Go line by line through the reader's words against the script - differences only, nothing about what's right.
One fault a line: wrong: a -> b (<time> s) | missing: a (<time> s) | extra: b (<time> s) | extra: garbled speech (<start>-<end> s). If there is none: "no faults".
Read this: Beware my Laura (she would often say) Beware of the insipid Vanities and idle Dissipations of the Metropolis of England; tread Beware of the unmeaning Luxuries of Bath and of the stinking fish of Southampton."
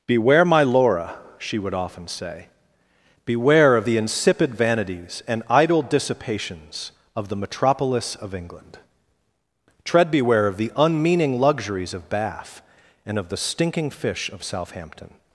no faults